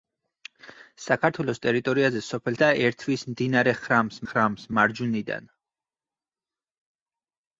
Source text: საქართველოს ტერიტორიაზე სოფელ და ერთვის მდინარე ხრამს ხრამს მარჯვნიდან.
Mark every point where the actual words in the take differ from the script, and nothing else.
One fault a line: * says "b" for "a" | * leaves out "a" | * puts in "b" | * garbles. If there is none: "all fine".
all fine